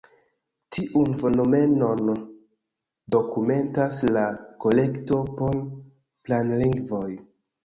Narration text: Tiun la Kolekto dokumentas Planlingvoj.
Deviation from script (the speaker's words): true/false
true